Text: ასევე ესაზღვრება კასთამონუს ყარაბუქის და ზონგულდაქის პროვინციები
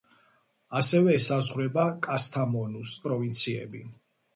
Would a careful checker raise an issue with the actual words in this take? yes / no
yes